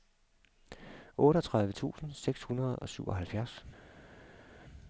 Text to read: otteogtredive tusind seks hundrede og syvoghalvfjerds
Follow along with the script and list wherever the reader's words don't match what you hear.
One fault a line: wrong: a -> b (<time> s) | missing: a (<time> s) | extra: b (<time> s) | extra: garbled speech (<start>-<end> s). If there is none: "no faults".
no faults